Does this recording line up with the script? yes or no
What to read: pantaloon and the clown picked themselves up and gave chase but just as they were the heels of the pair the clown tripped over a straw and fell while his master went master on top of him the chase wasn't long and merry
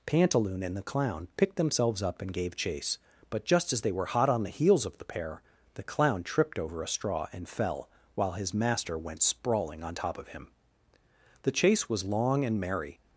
no